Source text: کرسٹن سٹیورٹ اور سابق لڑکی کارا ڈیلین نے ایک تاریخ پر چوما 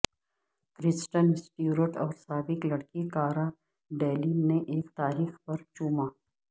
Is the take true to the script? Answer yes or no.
yes